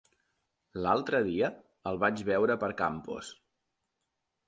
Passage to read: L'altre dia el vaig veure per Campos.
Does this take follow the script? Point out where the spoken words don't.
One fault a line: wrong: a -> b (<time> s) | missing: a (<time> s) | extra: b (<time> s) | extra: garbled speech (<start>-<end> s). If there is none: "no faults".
no faults